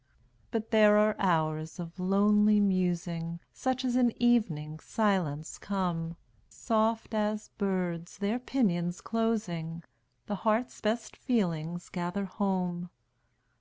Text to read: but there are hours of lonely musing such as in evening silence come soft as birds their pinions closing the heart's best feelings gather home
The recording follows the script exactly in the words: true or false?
true